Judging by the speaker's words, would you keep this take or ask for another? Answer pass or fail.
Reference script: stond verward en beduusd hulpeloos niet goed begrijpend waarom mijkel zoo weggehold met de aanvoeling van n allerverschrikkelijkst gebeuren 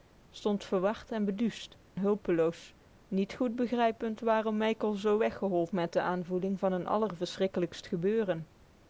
pass